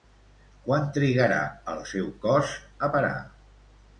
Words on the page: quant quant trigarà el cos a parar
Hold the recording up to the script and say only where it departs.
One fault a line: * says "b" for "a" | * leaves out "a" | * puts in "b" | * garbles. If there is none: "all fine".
* leaves out "quant"
* puts in "seu"